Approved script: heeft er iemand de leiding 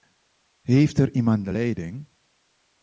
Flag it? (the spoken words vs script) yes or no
no